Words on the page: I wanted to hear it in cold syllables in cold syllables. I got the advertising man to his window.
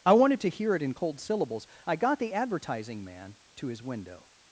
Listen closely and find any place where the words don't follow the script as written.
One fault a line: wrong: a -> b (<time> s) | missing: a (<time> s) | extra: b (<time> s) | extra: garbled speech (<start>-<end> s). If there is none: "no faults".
missing: in cold syllables (1.7 s)